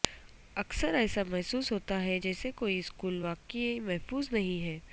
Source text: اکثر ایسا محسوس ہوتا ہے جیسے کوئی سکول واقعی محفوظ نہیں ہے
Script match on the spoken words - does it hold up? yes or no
yes